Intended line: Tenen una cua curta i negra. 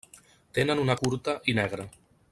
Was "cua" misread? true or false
true